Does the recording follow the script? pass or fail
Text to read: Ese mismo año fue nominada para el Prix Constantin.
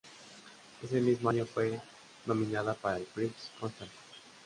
pass